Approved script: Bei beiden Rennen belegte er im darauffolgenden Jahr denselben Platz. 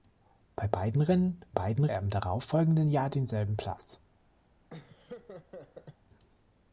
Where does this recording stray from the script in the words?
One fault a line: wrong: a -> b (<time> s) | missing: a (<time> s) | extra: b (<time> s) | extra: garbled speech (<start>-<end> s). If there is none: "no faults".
wrong: belegte -> beiden (1.5 s)